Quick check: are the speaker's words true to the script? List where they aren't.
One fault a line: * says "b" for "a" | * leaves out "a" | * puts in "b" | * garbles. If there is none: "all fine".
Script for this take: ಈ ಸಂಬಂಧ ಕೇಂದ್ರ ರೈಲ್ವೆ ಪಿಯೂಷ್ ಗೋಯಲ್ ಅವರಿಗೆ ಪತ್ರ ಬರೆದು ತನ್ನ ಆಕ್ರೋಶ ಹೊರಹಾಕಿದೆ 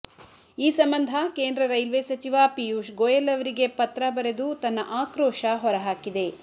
* puts in "ಸಚಿವ"